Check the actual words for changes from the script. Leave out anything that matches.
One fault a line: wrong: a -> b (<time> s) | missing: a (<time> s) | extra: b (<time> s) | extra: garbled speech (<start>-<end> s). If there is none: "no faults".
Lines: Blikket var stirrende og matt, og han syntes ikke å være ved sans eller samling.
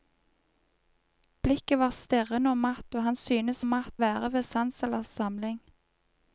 wrong: ikke -> matt (3.7 s)